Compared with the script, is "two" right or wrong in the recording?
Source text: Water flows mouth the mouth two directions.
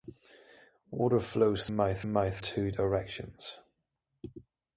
right